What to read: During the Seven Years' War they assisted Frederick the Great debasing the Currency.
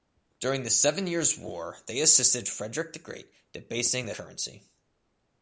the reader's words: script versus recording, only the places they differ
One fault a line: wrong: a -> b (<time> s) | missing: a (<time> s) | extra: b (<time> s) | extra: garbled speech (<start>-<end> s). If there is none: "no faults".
no faults